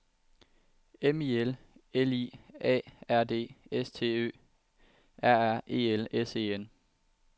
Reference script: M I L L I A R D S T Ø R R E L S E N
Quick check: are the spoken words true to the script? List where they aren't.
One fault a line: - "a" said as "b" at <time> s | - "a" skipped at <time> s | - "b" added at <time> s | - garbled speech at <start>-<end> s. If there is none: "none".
none